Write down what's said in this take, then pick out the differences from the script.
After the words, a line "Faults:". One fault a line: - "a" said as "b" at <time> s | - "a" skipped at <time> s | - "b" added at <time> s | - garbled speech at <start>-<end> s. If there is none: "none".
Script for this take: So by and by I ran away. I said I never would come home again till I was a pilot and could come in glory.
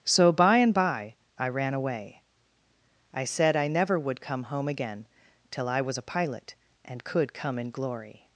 So by and by I ran away. I said I never would come home again till I was a pilot and could come in glory.
Faults:
none